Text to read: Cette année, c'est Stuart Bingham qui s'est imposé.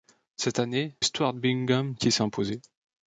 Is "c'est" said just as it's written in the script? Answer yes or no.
no